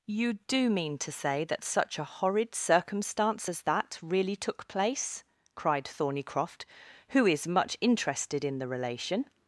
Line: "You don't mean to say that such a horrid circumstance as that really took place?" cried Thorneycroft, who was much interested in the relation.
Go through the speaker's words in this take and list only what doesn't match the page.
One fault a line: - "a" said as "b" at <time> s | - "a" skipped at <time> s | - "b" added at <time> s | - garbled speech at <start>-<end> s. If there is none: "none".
- "don't" said as "do" at 0.5 s
- "was" said as "is" at 7.3 s